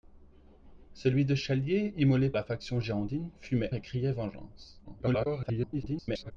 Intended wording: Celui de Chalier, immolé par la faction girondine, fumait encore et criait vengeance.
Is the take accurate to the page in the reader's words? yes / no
no